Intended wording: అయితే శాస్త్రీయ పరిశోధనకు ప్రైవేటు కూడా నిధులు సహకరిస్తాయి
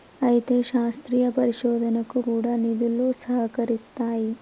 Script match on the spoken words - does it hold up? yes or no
no